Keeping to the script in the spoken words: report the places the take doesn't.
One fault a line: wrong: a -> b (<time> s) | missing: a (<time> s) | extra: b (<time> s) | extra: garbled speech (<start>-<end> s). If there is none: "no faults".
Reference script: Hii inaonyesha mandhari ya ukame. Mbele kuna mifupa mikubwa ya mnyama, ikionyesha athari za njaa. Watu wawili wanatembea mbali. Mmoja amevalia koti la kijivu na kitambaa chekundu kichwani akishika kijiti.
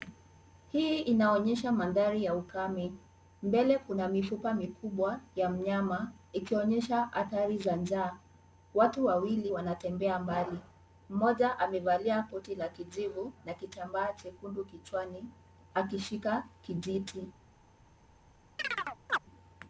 no faults